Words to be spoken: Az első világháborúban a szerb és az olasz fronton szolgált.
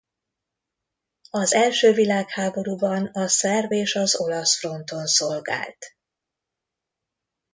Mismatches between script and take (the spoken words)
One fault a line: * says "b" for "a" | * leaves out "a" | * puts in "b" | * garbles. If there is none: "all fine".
all fine